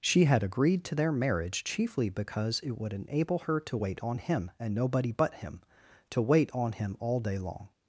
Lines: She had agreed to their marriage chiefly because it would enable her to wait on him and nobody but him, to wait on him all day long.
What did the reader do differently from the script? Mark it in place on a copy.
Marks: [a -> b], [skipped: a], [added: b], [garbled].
She had agreed to their marriage chiefly because it would enable her to wait on him and nobody but him, to wait on him all day long.